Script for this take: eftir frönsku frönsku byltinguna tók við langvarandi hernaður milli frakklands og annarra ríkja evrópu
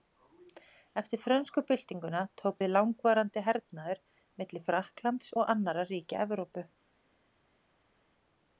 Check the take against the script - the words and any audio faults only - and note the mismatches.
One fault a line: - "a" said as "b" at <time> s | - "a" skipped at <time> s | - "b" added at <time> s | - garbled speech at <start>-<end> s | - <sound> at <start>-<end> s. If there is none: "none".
- "frönsku" skipped at 1.6 s